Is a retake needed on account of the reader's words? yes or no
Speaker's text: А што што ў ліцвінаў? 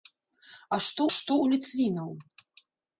no